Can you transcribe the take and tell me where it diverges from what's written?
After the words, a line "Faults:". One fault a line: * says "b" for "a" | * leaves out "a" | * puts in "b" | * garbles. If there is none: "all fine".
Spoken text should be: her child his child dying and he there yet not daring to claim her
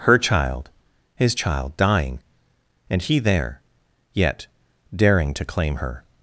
her child his child dying and he there yet daring to claim her
Faults:
* leaves out "not"